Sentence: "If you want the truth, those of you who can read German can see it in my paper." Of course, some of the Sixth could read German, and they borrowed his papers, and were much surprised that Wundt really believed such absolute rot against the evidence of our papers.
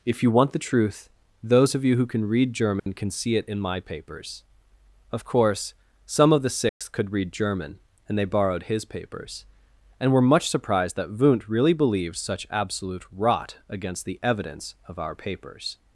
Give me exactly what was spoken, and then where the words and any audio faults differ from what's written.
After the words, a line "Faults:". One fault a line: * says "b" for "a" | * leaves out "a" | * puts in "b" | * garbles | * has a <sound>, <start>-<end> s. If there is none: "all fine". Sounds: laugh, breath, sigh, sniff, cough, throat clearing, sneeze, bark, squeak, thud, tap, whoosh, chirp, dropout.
"If you want the truth, those of you who can read German can see it in my papers." Of course, some of the Sixth could read German, and they borrowed his papers, and were much surprised that Wundt really believed such absolute rot against the evidence of our papers.
Faults:
* has a dropout, 2.8-2.9 s
* says "papers" for "paper"
* has a dropout, 6.7-6.8 s